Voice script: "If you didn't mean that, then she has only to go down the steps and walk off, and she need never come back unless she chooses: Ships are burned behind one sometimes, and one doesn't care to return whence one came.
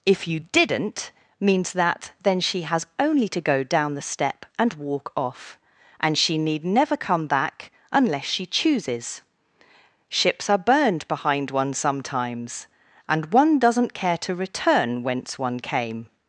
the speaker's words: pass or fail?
fail